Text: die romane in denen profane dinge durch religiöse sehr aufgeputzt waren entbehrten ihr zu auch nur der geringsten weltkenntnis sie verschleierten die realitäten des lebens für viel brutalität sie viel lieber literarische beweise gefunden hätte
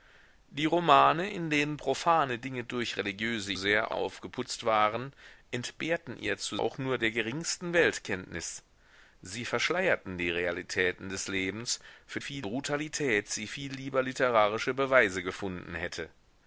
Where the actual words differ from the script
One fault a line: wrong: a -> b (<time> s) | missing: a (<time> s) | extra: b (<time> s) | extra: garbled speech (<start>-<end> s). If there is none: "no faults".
no faults